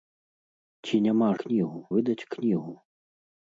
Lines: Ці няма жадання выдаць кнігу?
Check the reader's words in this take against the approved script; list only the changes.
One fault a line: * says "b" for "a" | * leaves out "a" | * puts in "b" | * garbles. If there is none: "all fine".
* says "кнігу" for "жадання"